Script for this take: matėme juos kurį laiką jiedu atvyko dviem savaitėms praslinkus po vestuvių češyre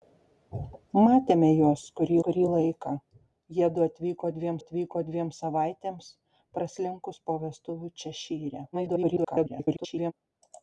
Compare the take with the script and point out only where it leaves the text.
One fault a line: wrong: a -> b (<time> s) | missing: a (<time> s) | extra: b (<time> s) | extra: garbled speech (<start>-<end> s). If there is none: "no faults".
extra: kurį (2.3 s)
extra: atvyko dviem (4.6 s)
extra: garbled speech (8.7-10.1 s)